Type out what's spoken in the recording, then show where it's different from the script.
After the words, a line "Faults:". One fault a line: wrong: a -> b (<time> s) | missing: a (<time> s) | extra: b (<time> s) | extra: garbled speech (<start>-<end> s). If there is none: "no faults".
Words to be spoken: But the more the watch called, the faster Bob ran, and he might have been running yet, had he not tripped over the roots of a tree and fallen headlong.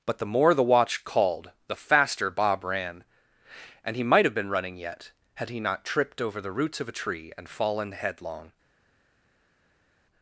But the more the watch called, the faster Bob ran, and he might have been running yet, had he not tripped over the roots of a tree and fallen headlong.
Faults:
no faults